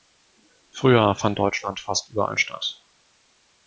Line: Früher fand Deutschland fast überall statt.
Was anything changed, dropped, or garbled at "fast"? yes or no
no